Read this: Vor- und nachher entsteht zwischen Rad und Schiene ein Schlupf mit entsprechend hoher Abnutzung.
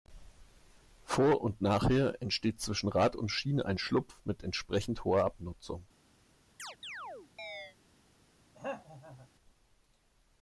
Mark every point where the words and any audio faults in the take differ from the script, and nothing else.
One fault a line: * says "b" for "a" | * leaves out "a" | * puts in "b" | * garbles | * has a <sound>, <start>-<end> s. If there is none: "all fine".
* has a chirp, 6.6-7.8 s
* has a throat clearing, 8.5-9.3 s